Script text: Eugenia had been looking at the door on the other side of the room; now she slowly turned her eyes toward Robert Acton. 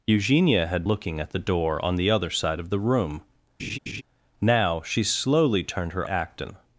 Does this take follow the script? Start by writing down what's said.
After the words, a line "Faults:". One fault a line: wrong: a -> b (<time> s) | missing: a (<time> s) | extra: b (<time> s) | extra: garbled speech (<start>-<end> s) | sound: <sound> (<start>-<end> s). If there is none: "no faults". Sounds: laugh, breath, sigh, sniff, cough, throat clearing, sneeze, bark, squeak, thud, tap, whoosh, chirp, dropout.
Eugenia had looking at the door on the other side of the room; now she slowly turned her Acton.
Faults:
missing: been (0.8 s)
sound: laugh (3.6-4.0 s)
missing: eyes toward Robert (6.0 s)